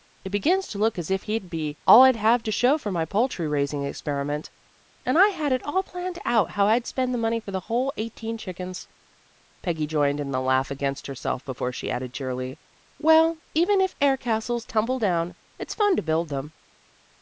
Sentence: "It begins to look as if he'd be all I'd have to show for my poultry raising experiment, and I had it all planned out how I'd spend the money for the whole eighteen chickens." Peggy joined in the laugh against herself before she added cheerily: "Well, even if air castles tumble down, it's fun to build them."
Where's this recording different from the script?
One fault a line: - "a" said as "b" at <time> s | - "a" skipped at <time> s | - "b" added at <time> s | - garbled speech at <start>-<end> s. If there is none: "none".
none